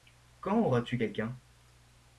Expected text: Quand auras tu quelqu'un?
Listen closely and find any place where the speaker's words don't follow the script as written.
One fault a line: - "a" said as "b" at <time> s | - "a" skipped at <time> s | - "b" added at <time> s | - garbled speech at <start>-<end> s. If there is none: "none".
none